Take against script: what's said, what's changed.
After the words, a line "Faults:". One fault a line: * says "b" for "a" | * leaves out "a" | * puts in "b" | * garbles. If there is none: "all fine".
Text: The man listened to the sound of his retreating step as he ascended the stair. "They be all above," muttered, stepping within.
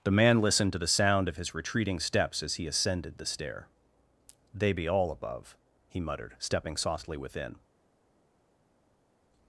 The man listened to the sound of his retreating steps as he ascended the stair. "They be all above," he muttered, stepping softly within.
Faults:
* says "steps" for "step"
* puts in "he"
* puts in "softly"